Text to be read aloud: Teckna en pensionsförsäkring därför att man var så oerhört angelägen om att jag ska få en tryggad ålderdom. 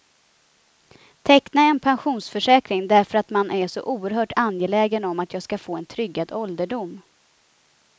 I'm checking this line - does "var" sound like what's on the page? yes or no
no